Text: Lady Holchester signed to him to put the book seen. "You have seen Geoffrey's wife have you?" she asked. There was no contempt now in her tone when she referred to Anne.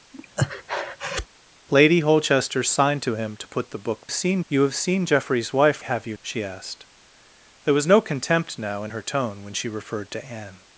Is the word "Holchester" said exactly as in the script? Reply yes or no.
yes